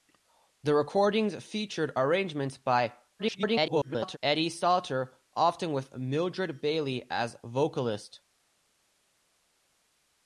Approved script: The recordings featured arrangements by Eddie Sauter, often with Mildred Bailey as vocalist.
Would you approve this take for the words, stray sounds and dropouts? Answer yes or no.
no